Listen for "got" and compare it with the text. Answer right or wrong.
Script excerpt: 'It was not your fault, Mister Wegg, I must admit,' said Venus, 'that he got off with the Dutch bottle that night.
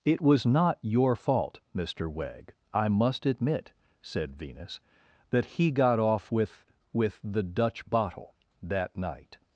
right